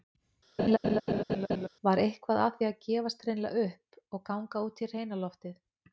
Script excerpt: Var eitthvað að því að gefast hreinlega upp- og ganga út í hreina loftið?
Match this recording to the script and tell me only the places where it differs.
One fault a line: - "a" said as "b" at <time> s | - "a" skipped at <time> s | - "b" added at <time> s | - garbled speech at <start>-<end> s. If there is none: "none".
none